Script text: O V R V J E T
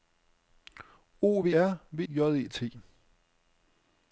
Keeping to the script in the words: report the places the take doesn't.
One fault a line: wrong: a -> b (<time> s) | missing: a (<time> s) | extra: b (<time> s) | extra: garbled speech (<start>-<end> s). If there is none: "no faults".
no faults